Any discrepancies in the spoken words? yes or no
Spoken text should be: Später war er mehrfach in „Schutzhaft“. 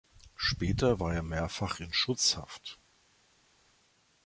no